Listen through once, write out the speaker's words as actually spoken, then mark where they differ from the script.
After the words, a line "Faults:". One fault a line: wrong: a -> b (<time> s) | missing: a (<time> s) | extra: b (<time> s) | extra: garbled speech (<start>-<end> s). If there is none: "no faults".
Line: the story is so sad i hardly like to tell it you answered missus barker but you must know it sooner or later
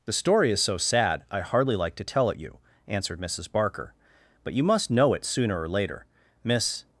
the story is so sad i hardly like to tell it you answered missus barker but you must know it sooner or later miss
Faults:
extra: miss (6.4 s)